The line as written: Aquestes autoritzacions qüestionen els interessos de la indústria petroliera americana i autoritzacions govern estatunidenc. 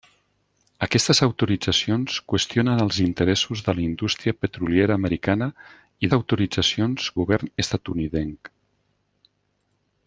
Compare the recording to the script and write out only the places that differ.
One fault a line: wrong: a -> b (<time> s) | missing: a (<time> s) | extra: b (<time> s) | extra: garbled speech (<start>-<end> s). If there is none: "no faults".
no faults